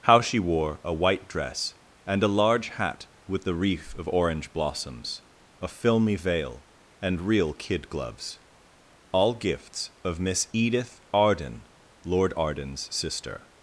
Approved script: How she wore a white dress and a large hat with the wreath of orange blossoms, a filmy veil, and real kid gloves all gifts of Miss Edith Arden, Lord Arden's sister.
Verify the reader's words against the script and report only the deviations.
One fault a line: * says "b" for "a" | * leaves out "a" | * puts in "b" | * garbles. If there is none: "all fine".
all fine